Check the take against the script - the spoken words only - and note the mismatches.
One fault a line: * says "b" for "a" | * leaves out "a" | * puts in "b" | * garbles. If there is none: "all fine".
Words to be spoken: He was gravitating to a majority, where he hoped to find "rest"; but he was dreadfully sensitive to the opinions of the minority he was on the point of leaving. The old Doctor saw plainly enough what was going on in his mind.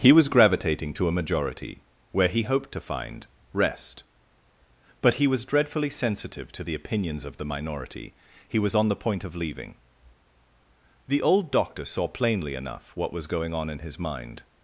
all fine